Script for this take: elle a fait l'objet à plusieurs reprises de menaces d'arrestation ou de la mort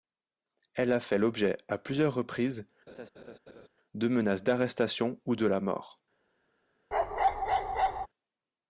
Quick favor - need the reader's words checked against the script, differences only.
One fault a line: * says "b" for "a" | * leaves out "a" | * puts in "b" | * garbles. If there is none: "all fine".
all fine